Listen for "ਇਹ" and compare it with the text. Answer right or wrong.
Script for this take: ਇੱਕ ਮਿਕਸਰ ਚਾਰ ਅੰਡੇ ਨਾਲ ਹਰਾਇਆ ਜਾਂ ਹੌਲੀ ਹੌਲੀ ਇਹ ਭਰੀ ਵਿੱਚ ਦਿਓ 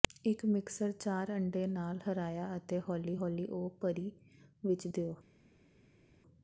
wrong